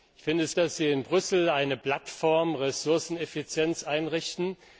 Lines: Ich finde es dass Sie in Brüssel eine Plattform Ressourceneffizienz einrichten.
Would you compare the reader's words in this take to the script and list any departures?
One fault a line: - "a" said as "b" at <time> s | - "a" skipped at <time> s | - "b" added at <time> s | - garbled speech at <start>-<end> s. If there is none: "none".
none